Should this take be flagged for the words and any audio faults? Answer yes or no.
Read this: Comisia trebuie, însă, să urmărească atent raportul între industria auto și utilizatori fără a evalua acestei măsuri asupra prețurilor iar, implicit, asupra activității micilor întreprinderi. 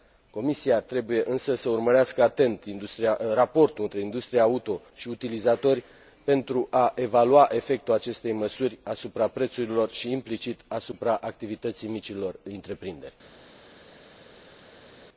yes